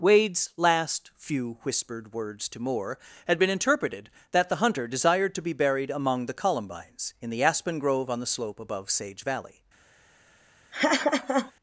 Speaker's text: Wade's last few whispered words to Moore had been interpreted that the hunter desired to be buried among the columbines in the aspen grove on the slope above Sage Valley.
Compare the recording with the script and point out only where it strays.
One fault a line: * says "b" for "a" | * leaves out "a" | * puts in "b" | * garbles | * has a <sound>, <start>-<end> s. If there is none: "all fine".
* has a laugh, 10.7-11.5 s